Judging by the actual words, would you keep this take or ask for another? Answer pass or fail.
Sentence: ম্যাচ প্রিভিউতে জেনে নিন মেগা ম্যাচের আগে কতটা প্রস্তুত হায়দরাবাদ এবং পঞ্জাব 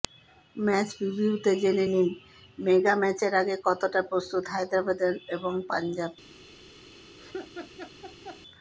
pass